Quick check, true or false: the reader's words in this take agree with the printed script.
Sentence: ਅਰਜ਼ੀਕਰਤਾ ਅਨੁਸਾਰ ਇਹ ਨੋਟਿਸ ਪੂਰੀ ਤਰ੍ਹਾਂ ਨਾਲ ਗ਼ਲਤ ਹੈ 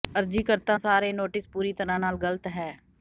true